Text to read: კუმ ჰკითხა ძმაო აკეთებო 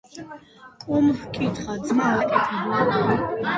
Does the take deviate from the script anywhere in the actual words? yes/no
no